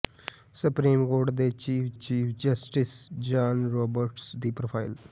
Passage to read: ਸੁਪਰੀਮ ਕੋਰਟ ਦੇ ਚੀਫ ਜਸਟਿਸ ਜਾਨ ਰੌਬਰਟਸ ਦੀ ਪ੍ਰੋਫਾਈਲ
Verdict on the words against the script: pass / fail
fail